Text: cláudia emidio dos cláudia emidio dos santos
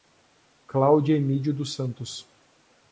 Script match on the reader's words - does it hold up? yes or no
no